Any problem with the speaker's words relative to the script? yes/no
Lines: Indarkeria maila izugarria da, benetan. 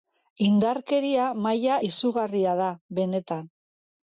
no